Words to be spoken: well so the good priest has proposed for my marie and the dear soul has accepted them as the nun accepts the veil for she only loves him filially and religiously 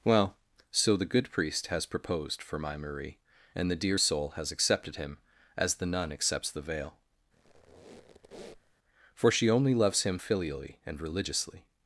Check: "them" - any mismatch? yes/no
yes